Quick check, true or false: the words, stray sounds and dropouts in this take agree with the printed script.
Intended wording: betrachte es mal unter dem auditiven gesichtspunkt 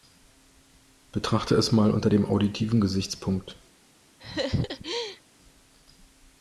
false